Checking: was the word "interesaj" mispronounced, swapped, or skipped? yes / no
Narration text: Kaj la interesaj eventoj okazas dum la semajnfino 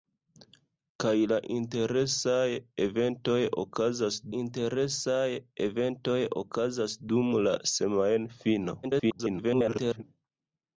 no